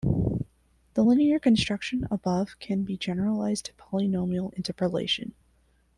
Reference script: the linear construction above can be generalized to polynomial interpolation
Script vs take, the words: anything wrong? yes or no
no